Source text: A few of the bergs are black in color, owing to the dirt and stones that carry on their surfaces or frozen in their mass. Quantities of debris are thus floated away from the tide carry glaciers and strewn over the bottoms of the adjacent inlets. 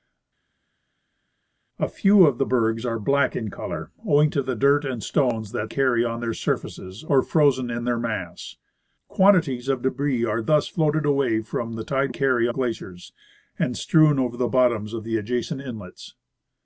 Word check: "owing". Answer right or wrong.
right